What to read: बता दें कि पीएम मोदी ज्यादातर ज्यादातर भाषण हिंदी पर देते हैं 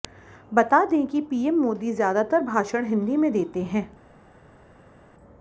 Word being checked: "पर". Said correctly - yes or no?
no